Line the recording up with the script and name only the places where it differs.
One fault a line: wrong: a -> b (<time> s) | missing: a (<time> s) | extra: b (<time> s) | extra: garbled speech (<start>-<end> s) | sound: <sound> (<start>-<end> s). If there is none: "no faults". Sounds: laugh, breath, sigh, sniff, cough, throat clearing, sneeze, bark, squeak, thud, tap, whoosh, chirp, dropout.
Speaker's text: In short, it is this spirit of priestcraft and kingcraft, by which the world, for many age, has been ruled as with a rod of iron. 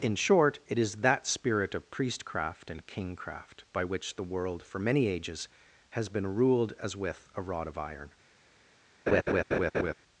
wrong: this -> that (0.9 s)
wrong: age -> ages (5.0 s)
sound: laugh (9.1-9.9 s)